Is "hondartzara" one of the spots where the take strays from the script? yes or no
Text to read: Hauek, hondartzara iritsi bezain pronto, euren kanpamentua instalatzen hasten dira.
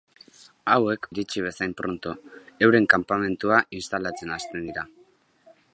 yes